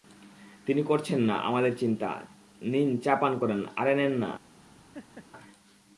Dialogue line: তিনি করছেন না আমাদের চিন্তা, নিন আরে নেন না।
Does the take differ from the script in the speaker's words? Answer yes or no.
yes